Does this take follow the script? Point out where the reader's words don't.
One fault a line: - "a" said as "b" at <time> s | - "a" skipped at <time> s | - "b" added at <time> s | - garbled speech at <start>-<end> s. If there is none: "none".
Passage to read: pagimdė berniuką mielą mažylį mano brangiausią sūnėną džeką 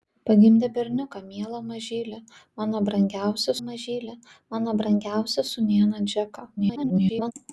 - "mažylį mano brangiausią" added at 3.6 s
- garbled speech at 6.6-7.3 s